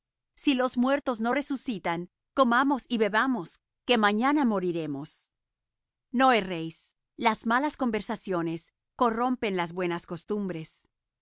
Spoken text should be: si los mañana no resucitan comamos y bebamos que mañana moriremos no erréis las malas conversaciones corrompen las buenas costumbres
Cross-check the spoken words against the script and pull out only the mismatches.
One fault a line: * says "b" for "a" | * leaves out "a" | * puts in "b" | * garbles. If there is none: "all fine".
* says "muertos" for "mañana"